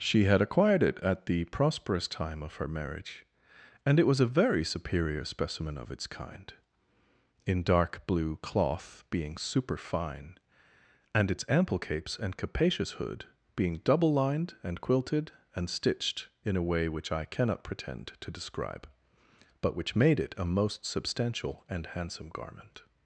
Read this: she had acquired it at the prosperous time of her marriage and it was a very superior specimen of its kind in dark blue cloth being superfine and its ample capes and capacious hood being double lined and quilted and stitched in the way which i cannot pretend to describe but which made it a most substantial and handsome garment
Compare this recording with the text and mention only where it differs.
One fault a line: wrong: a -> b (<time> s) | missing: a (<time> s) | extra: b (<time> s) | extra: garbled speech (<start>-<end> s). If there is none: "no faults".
wrong: the -> a (16.6 s)